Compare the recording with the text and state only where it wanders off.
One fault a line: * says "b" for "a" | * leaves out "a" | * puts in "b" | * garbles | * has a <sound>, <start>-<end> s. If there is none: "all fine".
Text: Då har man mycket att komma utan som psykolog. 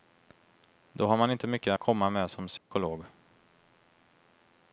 * puts in "inte"
* says "med" for "utan"
* has a dropout, 2.6-2.7 s